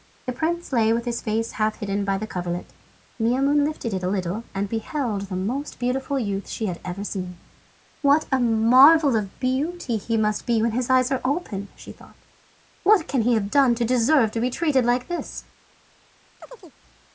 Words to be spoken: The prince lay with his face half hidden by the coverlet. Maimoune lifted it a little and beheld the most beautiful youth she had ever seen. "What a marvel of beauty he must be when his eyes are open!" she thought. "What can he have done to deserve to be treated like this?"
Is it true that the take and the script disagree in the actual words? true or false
false